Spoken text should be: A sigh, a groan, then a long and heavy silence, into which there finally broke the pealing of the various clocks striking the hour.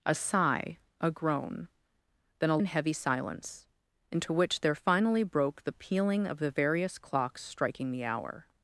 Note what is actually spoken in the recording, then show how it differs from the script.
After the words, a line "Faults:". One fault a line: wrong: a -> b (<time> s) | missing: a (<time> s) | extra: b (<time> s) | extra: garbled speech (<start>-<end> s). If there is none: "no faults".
A sigh, a groan, then a and heavy silence, into which there finally broke the pealing of the various clocks striking the hour.
Faults:
missing: long (2.6 s)